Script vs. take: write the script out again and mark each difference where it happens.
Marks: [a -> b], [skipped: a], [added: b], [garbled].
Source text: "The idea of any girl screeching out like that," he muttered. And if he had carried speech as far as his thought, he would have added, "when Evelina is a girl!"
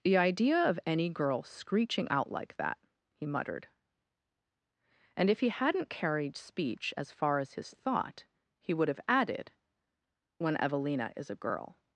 "The idea of any girl screeching out like that," he muttered. And if he [had -> hadn't] carried speech as far as his thought, he would have added, "when Evelina is a girl!"